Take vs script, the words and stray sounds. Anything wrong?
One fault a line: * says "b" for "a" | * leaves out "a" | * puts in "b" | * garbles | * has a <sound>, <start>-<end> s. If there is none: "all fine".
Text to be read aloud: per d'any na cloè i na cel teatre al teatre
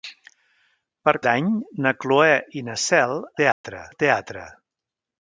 * has a dropout, 3.5-3.6 s